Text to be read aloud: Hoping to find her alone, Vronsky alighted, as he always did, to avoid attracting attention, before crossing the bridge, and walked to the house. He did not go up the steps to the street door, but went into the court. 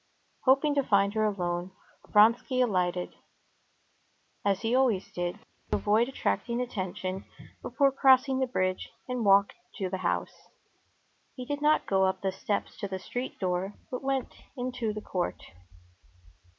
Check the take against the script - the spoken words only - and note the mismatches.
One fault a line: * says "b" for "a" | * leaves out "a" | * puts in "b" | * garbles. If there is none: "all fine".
all fine